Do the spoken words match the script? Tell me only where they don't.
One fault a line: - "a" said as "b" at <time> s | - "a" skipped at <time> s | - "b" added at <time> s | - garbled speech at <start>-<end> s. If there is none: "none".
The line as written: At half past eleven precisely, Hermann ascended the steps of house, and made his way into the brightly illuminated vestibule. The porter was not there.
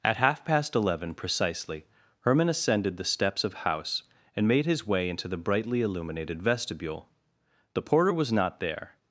none